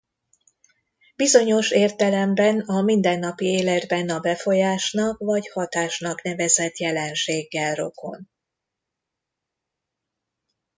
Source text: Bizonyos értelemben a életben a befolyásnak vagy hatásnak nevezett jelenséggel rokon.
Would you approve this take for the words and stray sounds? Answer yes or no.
no